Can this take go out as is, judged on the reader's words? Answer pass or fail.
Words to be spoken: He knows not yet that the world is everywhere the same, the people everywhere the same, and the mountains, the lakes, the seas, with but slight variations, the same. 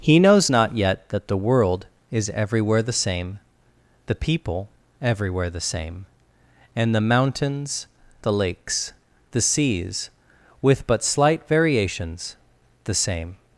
pass